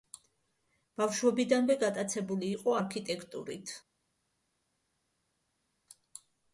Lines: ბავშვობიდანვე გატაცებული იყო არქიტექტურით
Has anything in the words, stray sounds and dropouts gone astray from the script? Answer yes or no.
no